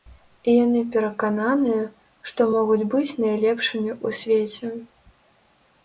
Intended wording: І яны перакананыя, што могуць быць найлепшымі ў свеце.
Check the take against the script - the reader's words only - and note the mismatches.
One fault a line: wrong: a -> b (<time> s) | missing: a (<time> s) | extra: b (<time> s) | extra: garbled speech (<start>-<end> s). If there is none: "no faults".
no faults